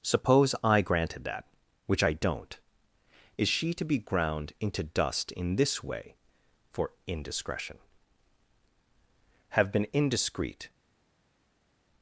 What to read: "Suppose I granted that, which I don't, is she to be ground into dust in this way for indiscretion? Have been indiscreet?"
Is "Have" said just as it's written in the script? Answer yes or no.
yes